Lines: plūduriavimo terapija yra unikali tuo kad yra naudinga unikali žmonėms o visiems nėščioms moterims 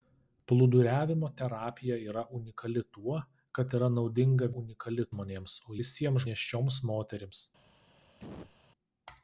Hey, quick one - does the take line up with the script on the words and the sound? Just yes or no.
no